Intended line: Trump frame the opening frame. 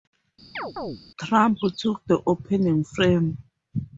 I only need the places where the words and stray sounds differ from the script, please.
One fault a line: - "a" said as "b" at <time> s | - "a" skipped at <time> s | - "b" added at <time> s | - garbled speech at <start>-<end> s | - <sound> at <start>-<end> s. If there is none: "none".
- chirp at 0.6-1.0 s
- "frame" said as "took" at 1.8 s